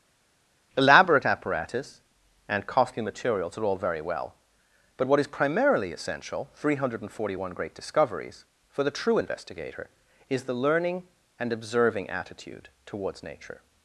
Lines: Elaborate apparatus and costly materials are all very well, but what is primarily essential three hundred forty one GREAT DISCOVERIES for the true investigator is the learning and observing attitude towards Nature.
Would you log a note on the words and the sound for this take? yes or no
no